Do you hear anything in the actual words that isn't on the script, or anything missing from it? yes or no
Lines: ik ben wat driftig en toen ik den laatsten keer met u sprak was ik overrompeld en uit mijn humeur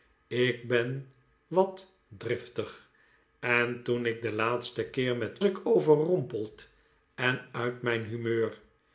yes